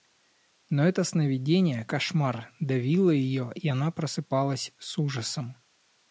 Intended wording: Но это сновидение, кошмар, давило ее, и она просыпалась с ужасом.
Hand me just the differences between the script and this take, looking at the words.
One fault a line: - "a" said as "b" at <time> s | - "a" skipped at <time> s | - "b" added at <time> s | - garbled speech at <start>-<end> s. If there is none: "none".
none